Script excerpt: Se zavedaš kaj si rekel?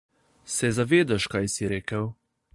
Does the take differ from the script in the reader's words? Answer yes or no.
no